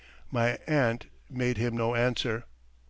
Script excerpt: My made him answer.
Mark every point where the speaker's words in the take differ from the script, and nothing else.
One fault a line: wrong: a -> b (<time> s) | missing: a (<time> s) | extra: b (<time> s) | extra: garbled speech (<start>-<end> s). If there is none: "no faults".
extra: aunt (0.7 s)
extra: no (1.8 s)